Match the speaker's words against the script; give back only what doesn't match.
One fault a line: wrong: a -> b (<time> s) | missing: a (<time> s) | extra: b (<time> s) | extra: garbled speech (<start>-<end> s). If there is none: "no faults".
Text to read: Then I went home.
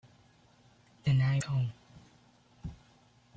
missing: went (1.4 s)